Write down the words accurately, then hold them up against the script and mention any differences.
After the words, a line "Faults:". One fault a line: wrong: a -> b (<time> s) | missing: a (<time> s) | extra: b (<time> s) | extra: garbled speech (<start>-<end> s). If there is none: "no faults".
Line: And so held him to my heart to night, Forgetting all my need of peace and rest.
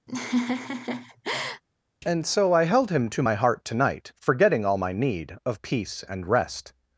And so I held him to my heart to night, Forgetting all my need of peace and rest.
Faults:
extra: I (2.5 s)